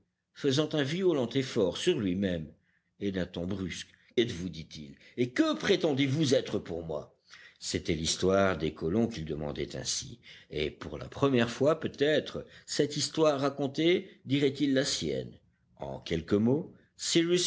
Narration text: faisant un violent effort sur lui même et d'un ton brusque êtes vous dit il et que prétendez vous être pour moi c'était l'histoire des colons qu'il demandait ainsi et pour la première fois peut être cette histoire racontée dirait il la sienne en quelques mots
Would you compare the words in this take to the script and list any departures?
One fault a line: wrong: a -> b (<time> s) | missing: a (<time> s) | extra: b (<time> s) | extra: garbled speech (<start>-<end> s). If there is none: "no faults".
no faults